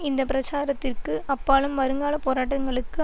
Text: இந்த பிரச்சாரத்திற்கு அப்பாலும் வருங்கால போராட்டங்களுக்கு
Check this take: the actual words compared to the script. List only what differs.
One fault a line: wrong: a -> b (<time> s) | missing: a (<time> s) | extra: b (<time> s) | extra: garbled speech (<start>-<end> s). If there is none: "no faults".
no faults